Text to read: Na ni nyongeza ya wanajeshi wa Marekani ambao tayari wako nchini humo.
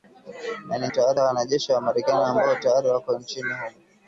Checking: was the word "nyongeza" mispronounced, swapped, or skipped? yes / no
yes